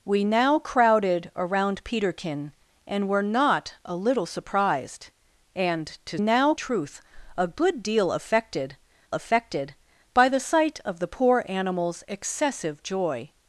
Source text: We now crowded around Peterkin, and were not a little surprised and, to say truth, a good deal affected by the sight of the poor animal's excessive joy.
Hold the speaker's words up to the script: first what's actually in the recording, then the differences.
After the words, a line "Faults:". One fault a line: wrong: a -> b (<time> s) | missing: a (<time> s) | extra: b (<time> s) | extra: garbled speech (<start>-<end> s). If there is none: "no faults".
We now crowded around Peterkin, and were not a little surprised and, to now truth, a good deal affected affected by the sight of the poor animal's excessive joy.
Faults:
wrong: say -> now (6.2 s)
extra: affected (9.1 s)